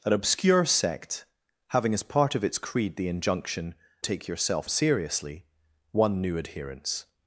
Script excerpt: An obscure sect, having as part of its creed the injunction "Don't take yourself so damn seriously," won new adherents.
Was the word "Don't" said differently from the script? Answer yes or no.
yes